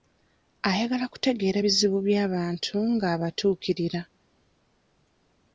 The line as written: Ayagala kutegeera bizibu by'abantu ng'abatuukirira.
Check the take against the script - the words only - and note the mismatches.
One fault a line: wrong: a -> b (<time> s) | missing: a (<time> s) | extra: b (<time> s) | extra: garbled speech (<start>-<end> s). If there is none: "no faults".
no faults